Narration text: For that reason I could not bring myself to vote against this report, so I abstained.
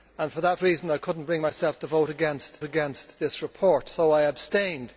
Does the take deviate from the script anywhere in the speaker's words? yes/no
yes